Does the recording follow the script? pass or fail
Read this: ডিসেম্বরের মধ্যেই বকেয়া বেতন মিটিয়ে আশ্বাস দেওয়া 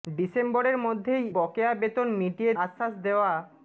pass